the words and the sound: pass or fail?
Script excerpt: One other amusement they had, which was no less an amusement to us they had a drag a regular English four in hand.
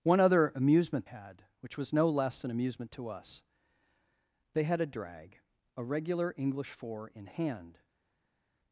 fail